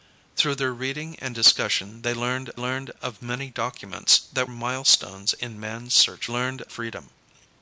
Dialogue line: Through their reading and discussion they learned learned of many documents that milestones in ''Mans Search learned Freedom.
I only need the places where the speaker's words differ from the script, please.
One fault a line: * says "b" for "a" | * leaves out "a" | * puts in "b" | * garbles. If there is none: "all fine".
all fine